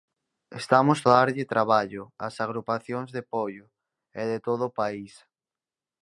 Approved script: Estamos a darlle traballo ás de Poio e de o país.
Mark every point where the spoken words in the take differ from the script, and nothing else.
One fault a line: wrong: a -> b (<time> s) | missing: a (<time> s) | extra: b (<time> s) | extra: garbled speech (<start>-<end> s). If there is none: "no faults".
extra: agrupacións (2.4 s)
extra: todo (4.5 s)